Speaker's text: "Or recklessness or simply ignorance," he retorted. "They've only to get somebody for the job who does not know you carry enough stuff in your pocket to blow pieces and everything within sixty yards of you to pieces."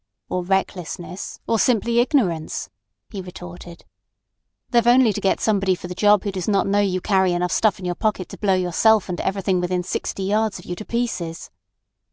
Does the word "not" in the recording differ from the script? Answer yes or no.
no